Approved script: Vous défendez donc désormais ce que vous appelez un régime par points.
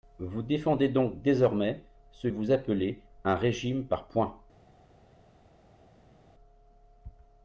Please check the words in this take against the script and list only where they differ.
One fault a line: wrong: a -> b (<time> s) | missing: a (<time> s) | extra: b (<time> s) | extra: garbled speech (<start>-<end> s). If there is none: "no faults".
missing: que (2.3 s)